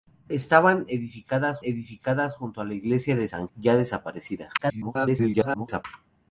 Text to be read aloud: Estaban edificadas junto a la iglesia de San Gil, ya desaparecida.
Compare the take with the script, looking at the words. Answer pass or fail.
fail